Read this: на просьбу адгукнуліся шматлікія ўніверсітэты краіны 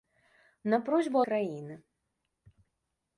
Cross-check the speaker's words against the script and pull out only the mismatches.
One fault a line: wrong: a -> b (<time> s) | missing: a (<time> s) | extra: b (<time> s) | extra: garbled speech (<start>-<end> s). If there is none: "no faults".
missing: адгукнуліся шматлікія ўніверсітэты (1.2 s)